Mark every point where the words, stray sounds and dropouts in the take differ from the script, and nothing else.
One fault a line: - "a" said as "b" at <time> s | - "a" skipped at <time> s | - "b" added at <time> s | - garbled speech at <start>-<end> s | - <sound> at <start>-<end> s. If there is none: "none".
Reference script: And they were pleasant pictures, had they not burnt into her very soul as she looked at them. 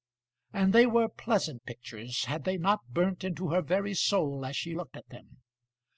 none